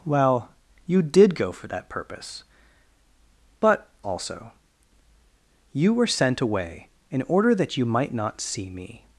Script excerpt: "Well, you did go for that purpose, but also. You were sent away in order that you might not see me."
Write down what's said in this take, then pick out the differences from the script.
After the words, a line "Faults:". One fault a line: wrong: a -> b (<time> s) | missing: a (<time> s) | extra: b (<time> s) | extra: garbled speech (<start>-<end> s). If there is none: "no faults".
"Well, you did go for that purpose, but also. You were sent away in order that you might not see me."
Faults:
no faults